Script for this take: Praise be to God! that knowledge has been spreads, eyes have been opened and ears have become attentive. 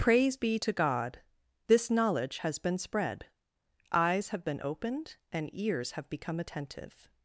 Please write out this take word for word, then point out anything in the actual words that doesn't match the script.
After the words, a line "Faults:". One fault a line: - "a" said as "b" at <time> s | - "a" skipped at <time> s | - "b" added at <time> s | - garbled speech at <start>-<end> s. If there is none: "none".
Praise be to God! this knowledge has been spread, eyes have been opened and ears have become attentive.
Faults:
- "that" said as "this" at 1.7 s
- "spreads" said as "spread" at 2.8 s